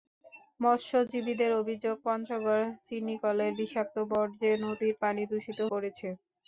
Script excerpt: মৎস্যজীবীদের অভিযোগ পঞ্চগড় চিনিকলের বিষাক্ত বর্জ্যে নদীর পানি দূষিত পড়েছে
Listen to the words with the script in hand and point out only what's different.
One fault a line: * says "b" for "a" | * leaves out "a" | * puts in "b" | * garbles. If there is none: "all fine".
all fine